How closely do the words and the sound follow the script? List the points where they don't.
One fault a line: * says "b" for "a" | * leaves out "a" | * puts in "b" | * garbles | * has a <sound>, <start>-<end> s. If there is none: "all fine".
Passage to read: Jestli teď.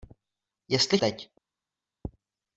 all fine